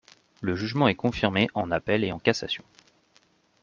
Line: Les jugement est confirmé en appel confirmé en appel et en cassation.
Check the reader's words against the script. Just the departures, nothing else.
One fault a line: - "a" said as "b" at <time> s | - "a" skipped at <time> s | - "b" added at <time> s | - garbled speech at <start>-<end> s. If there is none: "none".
- "Les" said as "Le" at 0.4 s
- "confirmé en appel" skipped at 2.0 s